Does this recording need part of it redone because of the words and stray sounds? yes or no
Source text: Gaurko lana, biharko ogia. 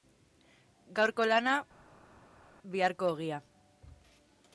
no